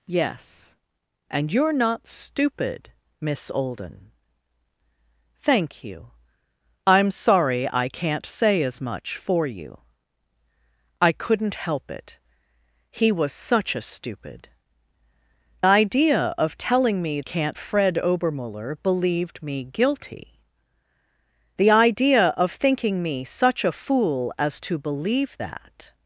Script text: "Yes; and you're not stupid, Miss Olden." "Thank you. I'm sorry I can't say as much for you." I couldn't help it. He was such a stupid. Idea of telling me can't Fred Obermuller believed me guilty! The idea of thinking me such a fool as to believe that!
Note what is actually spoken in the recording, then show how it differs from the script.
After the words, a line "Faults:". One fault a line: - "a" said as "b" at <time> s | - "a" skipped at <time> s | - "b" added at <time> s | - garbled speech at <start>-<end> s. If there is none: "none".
"Yes; and you're not stupid, Miss Olden." "Thank you. I'm sorry I can't say as much for you." I couldn't help it. He was such a stupid. Idea of telling me can't Fred Obermuller believed me guilty! The idea of thinking me such a fool as to believe that!
Faults:
none